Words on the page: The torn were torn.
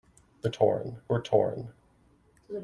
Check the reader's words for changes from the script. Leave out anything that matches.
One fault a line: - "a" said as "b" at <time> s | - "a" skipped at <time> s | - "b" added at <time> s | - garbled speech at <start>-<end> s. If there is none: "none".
none